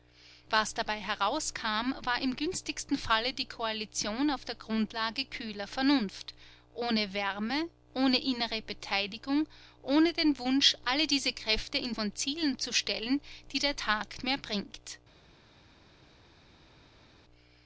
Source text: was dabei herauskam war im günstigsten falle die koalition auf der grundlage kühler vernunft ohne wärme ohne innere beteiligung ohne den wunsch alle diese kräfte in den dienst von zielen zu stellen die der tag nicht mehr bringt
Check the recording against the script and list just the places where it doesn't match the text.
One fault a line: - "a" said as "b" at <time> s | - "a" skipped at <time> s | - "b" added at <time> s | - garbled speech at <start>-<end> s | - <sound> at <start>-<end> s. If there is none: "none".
- "den dienst" skipped at 11.9 s
- "nicht" skipped at 14.2 s